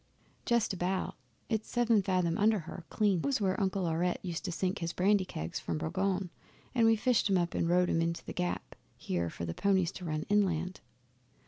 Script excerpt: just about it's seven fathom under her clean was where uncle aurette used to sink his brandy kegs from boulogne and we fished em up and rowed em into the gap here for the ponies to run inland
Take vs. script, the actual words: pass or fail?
pass